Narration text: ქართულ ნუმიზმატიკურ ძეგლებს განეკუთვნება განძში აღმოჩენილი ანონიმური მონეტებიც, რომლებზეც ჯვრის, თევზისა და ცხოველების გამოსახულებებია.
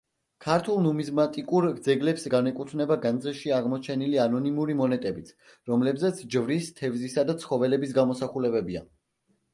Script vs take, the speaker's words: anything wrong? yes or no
no